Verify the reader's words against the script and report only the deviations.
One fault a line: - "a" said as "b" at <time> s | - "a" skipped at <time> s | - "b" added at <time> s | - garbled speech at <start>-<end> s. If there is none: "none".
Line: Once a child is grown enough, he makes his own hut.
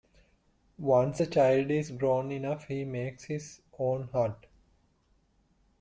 none